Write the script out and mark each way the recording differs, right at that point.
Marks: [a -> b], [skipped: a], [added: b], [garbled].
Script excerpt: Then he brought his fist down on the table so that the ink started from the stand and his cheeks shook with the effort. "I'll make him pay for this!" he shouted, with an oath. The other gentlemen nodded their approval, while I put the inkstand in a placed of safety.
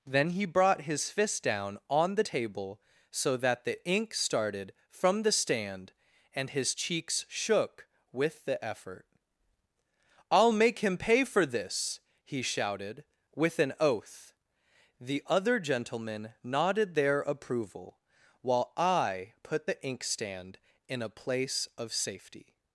Then he brought his fist down on the table so that the ink started from the stand and his cheeks shook with the effort. "I'll make him pay for this!" he shouted, with an oath. The other gentlemen nodded their approval, while I put the inkstand in a [placed -> place] of safety.